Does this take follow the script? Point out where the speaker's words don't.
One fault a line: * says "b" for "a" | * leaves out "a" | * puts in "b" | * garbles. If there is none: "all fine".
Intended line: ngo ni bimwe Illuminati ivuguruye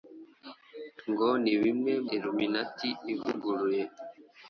all fine